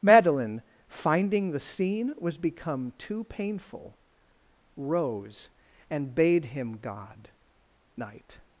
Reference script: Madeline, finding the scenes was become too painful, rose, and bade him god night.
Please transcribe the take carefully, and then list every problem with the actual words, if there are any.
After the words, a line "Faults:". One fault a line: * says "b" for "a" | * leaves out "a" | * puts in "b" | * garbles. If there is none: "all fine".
Madeline, finding the scene was become too painful, rose, and bade him god night.
Faults:
* says "scene" for "scenes"